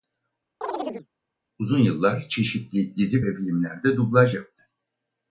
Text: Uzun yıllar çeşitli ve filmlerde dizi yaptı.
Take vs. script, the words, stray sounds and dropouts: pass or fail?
fail